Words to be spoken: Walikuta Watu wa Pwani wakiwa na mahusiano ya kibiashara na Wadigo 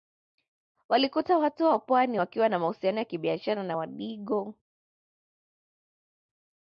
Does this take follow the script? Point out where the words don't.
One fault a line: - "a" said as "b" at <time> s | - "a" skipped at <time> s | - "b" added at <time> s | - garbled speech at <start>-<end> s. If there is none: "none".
none